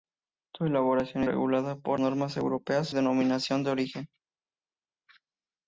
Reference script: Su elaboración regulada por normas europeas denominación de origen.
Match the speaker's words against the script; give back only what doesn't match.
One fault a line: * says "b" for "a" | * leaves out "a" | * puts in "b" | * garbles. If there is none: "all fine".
all fine